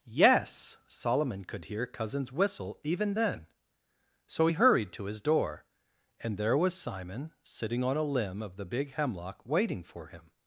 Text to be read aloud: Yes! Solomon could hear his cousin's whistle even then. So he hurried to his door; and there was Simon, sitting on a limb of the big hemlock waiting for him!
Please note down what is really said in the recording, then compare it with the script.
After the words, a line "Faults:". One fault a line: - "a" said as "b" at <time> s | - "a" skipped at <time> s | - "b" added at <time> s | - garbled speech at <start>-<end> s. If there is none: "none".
Yes! Solomon could hear cousin's whistle even then. So he hurried to his door; and there was Simon, sitting on a limb of the big hemlock waiting for him!
Faults:
- "his" skipped at 1.9 s